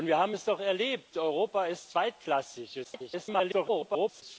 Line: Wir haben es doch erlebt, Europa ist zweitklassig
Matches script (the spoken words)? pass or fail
fail